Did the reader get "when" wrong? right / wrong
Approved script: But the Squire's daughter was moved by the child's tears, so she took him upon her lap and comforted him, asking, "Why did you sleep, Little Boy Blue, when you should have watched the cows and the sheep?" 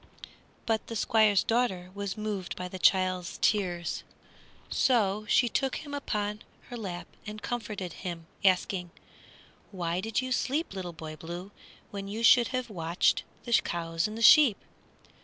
right